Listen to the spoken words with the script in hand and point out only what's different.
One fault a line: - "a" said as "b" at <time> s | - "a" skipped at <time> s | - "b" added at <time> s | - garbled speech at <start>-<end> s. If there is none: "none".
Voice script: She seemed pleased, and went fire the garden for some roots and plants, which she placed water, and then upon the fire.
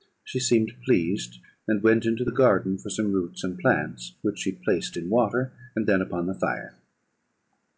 - "fire" said as "into" at 2.0 s
- "in" added at 5.0 s